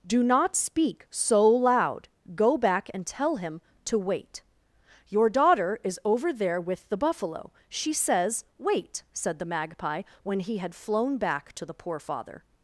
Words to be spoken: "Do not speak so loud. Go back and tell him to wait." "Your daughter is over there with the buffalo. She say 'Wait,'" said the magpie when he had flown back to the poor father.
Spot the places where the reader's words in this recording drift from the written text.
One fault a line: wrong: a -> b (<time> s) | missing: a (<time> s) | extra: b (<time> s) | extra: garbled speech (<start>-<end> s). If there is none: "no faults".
wrong: say -> says (7.9 s)